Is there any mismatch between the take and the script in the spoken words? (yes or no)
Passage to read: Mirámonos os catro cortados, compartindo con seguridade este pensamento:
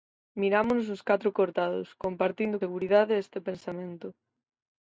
yes